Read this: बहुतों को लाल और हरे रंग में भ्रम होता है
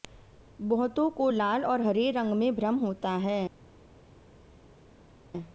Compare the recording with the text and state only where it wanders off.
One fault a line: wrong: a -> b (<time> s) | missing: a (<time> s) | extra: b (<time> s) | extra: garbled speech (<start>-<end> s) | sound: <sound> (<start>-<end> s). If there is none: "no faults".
no faults